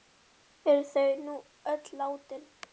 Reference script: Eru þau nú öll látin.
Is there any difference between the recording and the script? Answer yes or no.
no